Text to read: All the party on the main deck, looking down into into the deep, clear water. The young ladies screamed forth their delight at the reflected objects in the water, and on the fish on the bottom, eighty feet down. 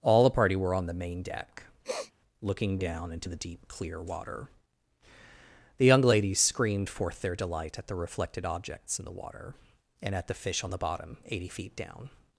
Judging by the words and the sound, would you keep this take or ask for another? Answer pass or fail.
fail